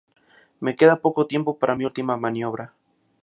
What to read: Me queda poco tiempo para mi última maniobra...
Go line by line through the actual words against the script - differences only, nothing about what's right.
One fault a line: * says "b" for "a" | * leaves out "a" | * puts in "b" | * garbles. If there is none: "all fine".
all fine